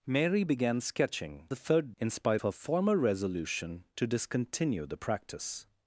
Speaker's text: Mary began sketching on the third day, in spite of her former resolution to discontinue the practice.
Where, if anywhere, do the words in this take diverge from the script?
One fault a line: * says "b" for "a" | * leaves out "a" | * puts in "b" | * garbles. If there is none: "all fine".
* leaves out "on"
* leaves out "day"
* leaves out "of"